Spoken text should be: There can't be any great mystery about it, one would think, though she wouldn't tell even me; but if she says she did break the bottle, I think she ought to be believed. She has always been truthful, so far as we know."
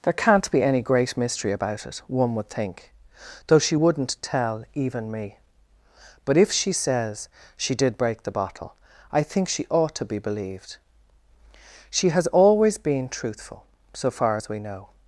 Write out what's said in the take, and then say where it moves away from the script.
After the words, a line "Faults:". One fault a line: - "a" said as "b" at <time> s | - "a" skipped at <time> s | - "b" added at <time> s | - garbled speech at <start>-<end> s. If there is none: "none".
There can't be any great mystery about it, one would think, though she wouldn't tell even me; but if she says she did break the bottle, I think she ought to be believed. She has always been truthful, so far as we know."
Faults:
none